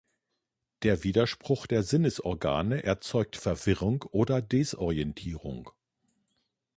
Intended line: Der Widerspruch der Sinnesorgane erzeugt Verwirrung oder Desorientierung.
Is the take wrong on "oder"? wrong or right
right